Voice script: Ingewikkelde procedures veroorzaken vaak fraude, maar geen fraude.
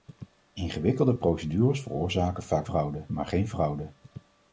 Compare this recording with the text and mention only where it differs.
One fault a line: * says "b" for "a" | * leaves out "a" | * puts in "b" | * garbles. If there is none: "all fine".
all fine